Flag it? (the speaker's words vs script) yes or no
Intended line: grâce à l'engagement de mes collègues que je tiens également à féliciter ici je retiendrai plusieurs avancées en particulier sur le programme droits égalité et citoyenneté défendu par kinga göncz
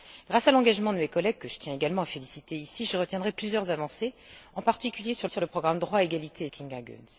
yes